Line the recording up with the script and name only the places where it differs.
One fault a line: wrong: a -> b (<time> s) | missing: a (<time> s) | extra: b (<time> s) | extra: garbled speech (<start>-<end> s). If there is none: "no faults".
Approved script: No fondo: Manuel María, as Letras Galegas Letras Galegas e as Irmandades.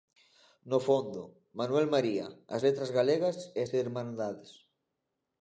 missing: Letras Galegas (3.4 s)